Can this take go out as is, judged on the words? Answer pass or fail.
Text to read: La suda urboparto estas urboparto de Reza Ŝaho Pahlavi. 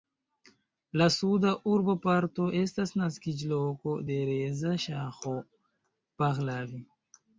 fail